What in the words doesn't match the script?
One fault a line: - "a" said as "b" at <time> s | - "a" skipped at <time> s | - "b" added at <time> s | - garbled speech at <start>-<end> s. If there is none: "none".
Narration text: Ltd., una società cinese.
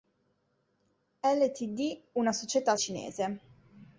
none